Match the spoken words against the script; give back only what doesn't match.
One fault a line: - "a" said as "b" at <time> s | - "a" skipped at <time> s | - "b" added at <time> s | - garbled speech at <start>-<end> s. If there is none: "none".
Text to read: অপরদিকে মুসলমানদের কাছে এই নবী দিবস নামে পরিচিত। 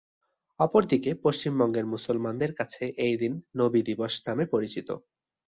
- "পশ্চিমবঙ্গের" added at 1.2 s
- "দিন" added at 3.2 s